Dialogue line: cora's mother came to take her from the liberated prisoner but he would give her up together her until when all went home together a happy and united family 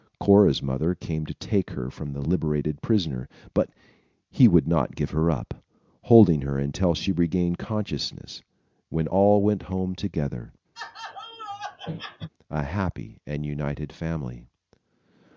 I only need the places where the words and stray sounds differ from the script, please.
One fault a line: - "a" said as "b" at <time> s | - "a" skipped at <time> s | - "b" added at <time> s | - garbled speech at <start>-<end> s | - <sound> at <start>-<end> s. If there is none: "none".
- "not" added at 4.7 s
- "together" said as "holding" at 6.0 s
- "she regained consciousness" added at 6.9 s
- laugh at 10.7-12.3 s